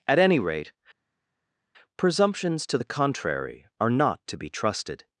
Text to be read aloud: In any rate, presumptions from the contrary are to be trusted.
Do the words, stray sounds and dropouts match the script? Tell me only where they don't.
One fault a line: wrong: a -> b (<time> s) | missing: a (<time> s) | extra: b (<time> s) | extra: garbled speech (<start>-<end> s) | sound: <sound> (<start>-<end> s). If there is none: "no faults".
wrong: In -> At (0.1 s)
wrong: from -> to (2.7 s)
extra: not (3.9 s)